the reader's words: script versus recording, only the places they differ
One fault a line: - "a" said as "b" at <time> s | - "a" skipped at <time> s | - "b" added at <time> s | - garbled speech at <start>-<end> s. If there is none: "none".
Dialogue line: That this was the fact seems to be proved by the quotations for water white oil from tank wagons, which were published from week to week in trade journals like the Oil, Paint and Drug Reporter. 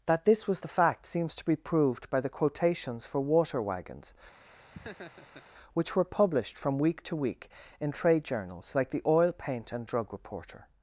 - "white oil from tank" skipped at 3.6 s